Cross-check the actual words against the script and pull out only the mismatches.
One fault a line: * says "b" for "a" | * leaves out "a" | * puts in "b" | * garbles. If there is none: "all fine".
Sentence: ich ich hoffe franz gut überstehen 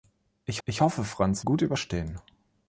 all fine